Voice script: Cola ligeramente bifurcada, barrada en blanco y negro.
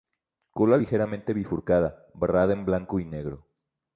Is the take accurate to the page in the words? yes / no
yes